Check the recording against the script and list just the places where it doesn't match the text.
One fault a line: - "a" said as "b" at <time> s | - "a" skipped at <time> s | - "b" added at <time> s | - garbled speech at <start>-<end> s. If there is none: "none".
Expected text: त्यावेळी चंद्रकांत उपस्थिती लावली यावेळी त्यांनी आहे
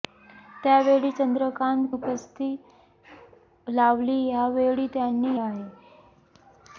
none